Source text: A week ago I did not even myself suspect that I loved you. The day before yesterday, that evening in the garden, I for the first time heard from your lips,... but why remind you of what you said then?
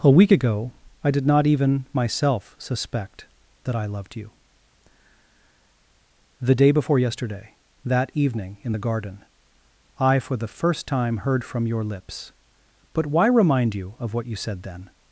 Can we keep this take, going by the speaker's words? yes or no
yes